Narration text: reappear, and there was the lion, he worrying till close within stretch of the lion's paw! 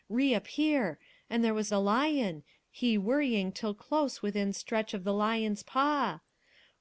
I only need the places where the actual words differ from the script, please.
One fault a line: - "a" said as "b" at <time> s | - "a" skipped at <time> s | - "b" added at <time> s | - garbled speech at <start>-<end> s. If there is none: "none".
none